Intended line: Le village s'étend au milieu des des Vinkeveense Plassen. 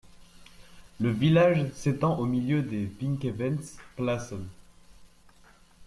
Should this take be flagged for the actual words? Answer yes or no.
yes